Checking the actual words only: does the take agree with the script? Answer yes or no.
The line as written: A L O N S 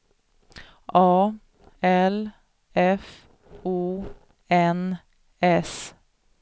no